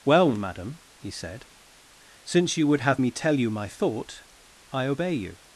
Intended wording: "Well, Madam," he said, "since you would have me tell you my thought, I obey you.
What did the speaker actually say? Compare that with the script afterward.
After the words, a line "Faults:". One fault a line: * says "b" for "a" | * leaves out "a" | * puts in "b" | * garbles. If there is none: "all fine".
"Well, Madam," he said, "since you would have me tell you my thought, I obey you.
Faults:
all fine